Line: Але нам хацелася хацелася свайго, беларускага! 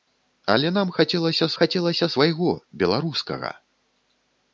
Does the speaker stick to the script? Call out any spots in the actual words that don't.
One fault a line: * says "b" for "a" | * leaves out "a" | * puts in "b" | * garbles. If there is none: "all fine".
all fine